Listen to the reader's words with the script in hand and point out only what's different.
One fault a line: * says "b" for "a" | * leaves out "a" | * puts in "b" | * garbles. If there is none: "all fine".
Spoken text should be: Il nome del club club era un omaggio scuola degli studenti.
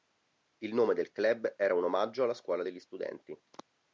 * leaves out "club"
* puts in "alla"